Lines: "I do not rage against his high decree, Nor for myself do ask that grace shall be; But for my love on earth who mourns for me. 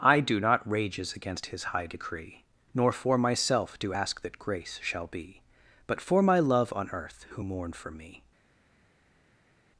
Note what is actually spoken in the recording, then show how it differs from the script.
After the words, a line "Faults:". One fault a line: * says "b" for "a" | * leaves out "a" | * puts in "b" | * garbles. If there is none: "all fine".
"I do not rages against his high decree, Nor for myself do ask that grace shall be; But for my love on earth who mourn for me.
Faults:
* says "rages" for "rage"
* says "mourn" for "mourns"